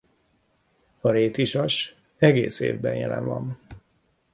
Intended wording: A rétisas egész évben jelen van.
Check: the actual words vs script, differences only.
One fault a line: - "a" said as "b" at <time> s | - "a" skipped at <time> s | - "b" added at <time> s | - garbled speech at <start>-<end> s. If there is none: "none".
none